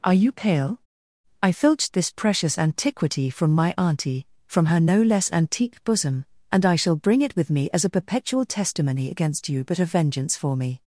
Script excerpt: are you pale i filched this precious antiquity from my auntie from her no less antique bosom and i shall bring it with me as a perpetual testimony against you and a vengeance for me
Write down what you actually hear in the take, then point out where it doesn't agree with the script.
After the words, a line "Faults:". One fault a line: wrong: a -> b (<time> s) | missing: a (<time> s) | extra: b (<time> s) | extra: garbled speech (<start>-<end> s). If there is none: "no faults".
are you pale i filched this precious antiquity from my auntie from her no less antique bosom and i shall bring it with me as a perpetual testimony against you but a vengeance for me
Faults:
wrong: and -> but (9.6 s)